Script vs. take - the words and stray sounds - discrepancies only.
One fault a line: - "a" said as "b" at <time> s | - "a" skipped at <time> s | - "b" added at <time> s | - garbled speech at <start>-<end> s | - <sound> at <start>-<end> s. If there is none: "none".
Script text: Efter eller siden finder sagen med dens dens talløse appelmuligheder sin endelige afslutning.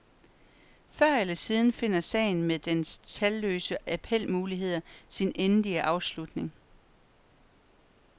- "Efter" said as "Før" at 0.9 s
- "dens" skipped at 3.0 s